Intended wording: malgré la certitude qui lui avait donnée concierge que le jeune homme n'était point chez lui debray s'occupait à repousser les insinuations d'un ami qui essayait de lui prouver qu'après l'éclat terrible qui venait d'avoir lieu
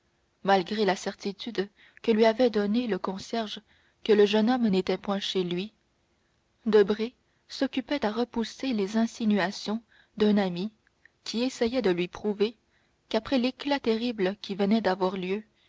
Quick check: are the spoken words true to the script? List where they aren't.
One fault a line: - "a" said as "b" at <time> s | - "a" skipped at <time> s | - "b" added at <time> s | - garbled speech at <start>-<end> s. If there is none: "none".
- "qui" said as "que" at 2.0 s
- "le" added at 2.9 s